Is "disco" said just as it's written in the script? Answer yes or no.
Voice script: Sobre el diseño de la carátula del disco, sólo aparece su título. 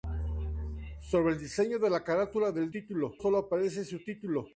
no